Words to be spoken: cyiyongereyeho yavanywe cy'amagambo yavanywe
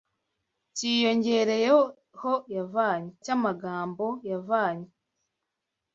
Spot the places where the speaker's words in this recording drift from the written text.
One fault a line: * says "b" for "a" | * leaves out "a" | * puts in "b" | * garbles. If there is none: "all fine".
all fine